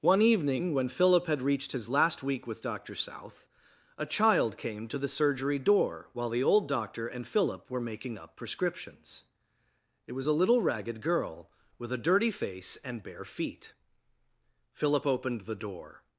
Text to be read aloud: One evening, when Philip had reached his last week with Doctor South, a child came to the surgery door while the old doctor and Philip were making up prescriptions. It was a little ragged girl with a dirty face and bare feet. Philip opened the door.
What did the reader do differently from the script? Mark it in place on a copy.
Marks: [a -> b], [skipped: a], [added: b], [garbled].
One evening, when Philip had reached his last week with Doctor South, a child came to the surgery door while the old doctor and Philip were making up prescriptions. It was a little ragged girl with a dirty face and bare feet. Philip opened the door.